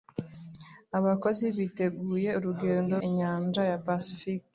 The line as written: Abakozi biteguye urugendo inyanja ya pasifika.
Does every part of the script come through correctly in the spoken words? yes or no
yes